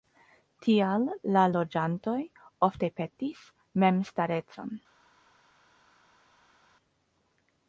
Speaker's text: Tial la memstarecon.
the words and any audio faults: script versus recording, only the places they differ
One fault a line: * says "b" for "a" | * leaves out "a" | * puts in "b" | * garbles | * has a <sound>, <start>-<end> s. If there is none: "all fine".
* puts in "loĝantoj ofte petis"